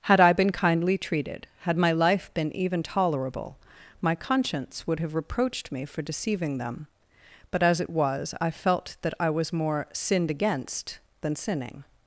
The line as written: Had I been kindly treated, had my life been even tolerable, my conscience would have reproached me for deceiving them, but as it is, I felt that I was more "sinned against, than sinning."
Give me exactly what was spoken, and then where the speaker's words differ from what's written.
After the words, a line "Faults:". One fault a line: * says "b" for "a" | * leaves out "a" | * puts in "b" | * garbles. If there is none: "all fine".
Had I been kindly treated, had my life been even tolerable, my conscience would have reproached me for deceiving them, but as it was, I felt that I was more "sinned against, than sinning."
Faults:
* says "was" for "is"